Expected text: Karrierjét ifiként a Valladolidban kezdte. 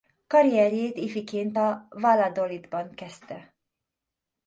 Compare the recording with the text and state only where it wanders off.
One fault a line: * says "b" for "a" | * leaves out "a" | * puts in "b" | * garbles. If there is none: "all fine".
all fine